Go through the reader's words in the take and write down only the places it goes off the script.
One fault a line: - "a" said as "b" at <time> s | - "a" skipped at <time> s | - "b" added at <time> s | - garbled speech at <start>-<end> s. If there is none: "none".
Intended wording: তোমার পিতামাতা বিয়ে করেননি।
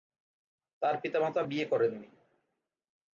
- "তোমার" said as "তার" at 0.8 s